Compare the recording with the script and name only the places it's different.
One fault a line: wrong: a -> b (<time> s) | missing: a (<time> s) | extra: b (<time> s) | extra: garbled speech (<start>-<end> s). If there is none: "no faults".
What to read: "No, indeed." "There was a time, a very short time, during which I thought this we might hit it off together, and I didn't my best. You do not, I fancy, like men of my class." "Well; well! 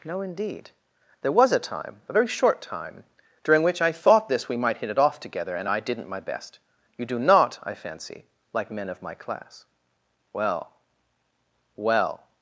no faults